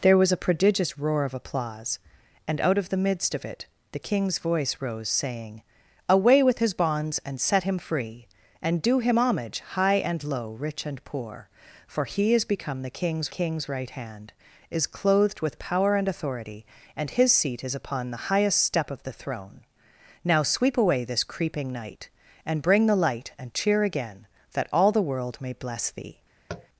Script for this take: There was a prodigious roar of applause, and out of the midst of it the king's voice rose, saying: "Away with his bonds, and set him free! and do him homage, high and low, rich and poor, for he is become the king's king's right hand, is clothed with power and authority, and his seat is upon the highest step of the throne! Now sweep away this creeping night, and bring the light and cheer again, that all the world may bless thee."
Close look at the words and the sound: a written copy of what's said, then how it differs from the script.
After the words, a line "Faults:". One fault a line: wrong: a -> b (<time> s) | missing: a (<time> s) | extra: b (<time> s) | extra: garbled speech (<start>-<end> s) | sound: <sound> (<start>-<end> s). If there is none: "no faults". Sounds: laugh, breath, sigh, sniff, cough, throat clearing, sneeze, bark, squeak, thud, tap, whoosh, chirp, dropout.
There was a prodigious roar of applause, and out of the midst of it the king's voice rose, saying: "Away with his bonds, and set him free! and do him homage, high and low, rich and poor, for he is become the king's king's right hand, is clothed with power and authority, and his seat is upon the highest step of the throne! Now sweep away this creeping night, and bring the light and cheer again, that all the world may bless thee."
Faults:
sound: tap (26.5-26.7 s)